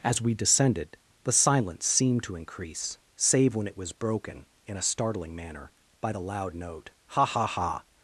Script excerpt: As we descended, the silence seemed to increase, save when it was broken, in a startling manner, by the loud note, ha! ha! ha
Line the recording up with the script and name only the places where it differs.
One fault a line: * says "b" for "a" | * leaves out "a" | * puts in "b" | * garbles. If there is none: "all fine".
all fine